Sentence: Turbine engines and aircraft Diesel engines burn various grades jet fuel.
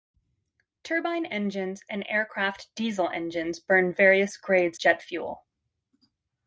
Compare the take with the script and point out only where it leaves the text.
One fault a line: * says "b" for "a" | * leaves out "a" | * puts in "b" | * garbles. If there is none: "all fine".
all fine